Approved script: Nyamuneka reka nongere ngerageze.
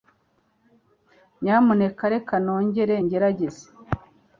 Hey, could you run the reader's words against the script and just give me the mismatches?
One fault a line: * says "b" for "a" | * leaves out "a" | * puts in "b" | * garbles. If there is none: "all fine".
all fine